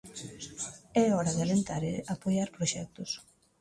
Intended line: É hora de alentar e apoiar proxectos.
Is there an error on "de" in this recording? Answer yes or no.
no